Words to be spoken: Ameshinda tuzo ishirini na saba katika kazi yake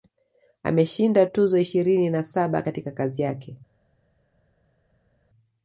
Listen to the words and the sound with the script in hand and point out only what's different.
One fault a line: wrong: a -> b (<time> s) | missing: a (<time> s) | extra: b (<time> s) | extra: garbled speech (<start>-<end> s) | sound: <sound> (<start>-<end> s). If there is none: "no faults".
no faults